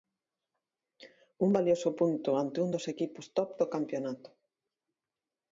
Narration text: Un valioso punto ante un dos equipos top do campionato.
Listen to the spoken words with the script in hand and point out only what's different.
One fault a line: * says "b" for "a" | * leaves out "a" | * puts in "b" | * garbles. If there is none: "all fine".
all fine